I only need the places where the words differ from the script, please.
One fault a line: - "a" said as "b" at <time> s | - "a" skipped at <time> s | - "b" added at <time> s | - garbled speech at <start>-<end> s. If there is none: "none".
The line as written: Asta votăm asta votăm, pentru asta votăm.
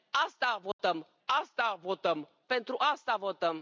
none